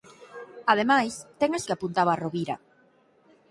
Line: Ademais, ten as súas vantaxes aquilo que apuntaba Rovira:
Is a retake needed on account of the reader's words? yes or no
yes